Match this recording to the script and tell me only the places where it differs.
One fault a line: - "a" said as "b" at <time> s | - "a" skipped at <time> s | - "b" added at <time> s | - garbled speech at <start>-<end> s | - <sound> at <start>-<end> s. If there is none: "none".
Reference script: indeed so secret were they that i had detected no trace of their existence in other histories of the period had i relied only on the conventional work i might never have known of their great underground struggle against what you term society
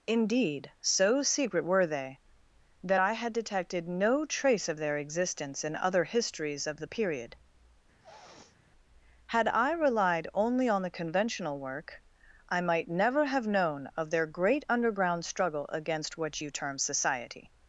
- sniff at 8.0-8.6 s